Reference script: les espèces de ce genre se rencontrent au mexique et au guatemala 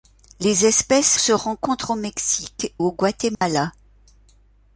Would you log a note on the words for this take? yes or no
yes